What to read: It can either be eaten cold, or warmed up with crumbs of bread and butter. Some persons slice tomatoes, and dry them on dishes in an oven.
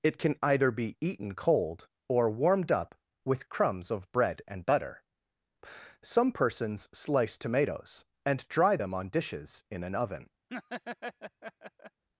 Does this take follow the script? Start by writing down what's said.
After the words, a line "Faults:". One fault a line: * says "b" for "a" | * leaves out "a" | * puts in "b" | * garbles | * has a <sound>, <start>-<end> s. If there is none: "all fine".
It can either be eaten cold, or warmed up with crumbs of bread and butter. Some persons slice tomatoes, and dry them on dishes in an oven.
Faults:
* has a laugh, 10.5-12.0 s